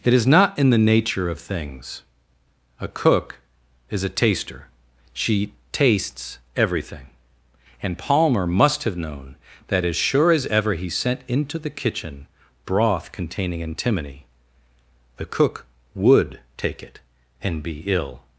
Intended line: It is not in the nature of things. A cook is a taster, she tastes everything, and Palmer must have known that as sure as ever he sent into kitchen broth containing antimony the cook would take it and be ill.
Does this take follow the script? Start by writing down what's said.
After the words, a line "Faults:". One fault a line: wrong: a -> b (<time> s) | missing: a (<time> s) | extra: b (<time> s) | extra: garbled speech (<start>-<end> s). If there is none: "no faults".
It is not in the nature of things. A cook is a taster, she tastes everything, and Palmer must have known that as sure as ever he sent into the kitchen broth containing antimony the cook would take it and be ill.
Faults:
extra: the (11.6 s)